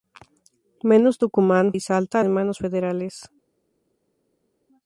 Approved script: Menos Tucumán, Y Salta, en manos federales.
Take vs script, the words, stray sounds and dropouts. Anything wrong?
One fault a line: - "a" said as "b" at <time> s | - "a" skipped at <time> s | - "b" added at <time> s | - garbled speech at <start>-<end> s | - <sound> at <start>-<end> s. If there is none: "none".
none